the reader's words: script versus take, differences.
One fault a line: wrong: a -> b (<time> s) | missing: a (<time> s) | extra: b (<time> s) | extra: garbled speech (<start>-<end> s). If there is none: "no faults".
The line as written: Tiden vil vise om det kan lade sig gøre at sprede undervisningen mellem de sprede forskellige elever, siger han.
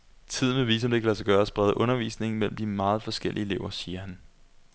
wrong: sprede -> meget (2.6 s)